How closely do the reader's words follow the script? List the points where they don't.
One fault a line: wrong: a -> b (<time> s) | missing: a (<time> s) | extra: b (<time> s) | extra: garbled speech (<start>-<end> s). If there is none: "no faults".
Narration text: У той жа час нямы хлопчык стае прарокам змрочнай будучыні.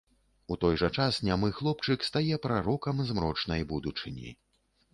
no faults